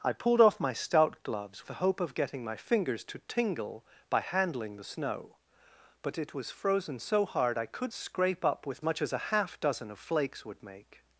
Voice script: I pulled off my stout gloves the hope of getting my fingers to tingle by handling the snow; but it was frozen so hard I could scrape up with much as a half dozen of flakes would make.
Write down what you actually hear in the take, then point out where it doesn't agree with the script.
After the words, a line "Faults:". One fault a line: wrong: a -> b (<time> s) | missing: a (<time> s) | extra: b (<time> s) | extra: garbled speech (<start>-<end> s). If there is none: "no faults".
I pulled off my stout gloves the hope of getting my fingers to tingle by handling the snow; but it was frozen so hard I could scrape up with much as a half dozen of flakes would make.
Faults:
no faults